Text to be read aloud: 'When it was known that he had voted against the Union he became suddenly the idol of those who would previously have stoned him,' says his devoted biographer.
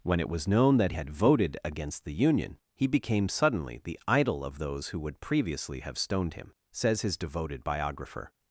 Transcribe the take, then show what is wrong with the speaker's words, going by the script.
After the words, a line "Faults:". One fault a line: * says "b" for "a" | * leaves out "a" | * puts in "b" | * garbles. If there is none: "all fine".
'When it was known that had voted against the Union he became suddenly the idol of those who would previously have stoned him,' says his devoted biographer.
Faults:
* leaves out "he"